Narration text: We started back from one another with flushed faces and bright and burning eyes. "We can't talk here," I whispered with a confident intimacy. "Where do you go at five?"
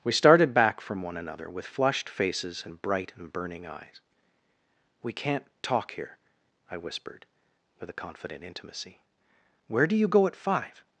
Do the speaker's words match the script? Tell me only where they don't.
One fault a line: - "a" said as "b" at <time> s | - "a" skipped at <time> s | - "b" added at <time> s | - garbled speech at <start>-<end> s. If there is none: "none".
none